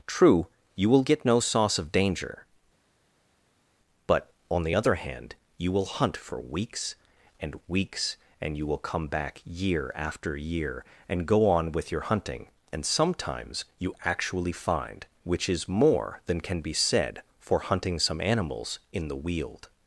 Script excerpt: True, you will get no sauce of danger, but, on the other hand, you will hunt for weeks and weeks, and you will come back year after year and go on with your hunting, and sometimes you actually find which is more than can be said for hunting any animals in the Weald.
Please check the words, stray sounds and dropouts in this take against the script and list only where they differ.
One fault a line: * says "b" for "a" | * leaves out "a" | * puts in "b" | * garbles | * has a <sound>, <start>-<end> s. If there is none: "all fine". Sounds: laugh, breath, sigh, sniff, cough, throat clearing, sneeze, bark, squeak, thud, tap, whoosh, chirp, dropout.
* says "some" for "any"